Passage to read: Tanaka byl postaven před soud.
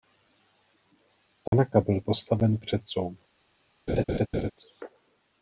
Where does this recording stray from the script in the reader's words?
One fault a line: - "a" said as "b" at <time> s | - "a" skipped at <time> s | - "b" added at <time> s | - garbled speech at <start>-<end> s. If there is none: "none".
none